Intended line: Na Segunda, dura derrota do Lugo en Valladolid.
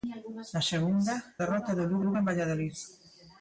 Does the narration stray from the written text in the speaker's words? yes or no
yes